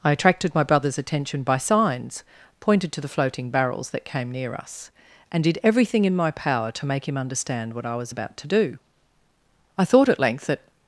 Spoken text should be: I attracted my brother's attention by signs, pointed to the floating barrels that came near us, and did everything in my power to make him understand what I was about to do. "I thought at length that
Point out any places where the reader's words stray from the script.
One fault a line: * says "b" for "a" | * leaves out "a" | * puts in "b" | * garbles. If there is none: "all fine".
all fine